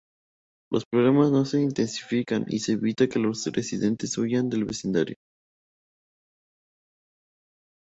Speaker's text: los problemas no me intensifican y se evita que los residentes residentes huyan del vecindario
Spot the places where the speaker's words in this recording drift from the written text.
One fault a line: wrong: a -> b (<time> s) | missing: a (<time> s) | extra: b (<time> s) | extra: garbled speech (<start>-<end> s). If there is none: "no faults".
wrong: me -> se (1.4 s)
missing: residentes (4.2 s)